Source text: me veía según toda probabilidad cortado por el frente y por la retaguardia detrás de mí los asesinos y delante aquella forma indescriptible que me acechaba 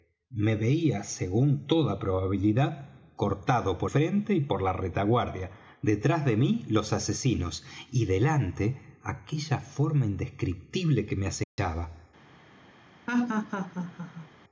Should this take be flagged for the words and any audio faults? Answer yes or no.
yes